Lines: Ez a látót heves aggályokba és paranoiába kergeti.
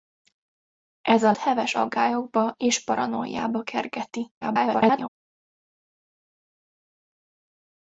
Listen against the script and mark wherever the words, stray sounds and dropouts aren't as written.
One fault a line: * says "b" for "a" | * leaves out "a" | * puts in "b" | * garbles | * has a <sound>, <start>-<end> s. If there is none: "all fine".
* leaves out "látót"
* garbles